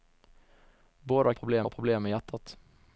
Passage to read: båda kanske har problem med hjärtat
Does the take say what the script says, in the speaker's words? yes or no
no